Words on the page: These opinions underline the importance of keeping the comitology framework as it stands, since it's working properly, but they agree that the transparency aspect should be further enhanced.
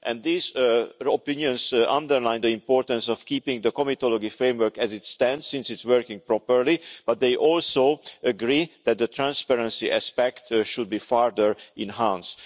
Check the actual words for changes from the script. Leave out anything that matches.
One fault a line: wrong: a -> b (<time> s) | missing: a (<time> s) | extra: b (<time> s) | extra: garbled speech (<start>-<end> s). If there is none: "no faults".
extra: also (7.3 s)